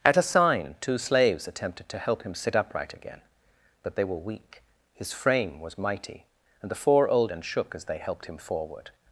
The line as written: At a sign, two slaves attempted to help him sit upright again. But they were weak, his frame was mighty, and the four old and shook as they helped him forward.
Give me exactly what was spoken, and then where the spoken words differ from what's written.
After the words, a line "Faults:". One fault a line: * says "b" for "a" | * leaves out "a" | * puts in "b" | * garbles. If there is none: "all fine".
At a sign, two slaves attempted to help him sit upright again. But they were weak, his frame was mighty, and the four old and shook as they helped him forward.
Faults:
all fine